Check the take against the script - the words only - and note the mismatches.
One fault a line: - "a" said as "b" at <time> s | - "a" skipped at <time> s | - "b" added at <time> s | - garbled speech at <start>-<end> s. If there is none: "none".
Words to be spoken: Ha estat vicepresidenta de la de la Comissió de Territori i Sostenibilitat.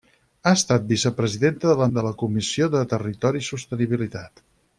none